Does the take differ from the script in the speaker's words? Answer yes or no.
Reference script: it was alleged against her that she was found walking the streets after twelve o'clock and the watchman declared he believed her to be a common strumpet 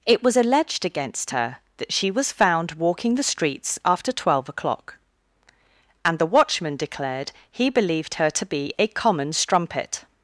no